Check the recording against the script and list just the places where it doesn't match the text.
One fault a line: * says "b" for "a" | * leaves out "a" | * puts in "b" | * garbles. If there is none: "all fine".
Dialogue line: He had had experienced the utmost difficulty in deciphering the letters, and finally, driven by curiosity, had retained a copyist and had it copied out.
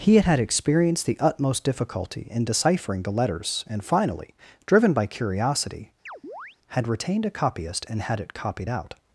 all fine